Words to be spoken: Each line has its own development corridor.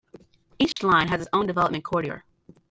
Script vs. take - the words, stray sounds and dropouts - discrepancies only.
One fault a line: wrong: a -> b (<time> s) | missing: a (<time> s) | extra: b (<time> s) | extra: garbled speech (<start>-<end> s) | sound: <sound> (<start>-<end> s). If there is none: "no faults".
sound: dropout (0.7-0.8 s)